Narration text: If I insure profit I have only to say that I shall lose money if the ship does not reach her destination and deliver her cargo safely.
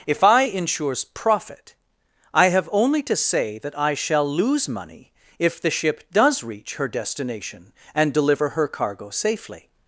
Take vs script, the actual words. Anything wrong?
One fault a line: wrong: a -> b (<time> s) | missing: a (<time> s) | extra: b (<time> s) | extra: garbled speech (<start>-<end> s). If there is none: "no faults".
wrong: insure -> insures (0.4 s)
missing: not (6.4 s)